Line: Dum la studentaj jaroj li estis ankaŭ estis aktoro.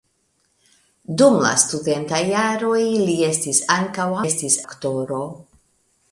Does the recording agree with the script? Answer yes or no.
yes